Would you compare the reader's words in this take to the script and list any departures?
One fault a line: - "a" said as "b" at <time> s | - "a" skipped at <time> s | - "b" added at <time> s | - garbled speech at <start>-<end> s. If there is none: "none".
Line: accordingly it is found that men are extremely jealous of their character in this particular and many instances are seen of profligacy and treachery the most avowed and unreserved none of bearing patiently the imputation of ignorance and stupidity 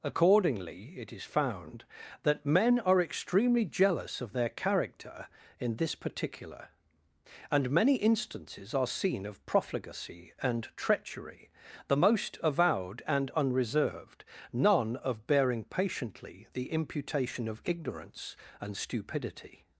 none